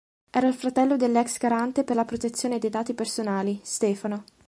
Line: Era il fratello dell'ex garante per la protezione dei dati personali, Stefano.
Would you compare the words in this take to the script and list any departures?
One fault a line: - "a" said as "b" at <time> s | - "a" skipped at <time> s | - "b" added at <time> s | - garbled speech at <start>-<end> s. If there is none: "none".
none